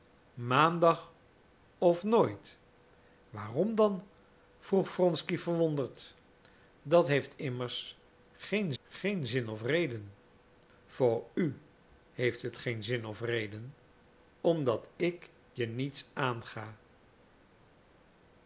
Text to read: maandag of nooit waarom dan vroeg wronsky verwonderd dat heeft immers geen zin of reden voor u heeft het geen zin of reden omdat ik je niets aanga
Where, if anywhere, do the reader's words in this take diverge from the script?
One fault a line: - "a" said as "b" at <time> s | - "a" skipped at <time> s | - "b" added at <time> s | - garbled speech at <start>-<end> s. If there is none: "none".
- "geen" added at 8.8 s